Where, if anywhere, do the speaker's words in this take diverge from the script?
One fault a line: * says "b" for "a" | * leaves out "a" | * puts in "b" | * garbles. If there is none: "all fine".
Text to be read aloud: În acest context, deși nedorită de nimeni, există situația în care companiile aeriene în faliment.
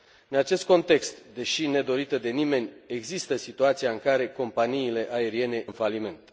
all fine